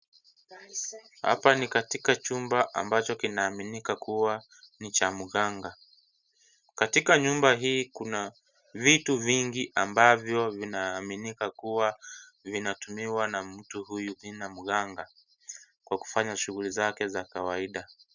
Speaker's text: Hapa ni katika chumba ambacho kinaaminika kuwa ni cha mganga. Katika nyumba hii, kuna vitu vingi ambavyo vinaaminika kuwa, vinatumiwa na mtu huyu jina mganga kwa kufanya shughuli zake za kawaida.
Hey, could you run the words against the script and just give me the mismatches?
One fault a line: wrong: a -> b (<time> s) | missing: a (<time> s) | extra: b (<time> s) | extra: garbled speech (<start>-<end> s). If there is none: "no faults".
no faults